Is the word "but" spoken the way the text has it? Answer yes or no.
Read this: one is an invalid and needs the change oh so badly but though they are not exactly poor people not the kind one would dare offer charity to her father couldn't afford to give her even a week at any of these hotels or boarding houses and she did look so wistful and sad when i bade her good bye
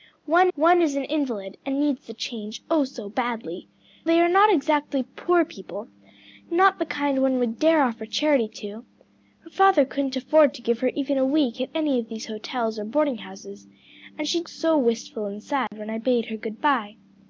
no